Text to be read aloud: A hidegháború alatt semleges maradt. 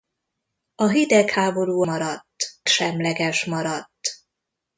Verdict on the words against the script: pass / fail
fail